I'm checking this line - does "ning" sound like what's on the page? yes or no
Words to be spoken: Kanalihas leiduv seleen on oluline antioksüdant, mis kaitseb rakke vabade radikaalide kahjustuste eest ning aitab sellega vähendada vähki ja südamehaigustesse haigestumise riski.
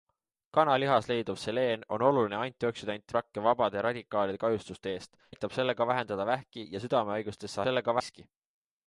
no